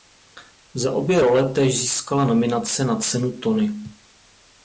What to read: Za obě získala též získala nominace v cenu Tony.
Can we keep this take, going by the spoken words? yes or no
no